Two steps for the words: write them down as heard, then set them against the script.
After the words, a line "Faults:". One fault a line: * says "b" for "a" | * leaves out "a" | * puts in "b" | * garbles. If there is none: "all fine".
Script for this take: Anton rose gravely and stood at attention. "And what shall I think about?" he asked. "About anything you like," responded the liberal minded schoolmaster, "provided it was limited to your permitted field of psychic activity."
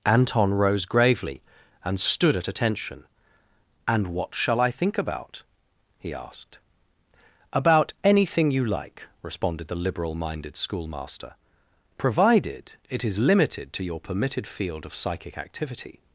Anton rose gravely and stood at attention. "And what shall I think about?" he asked. "About anything you like," responded the liberal minded schoolmaster, "provided it is limited to your permitted field of psychic activity."
Faults:
* says "is" for "was"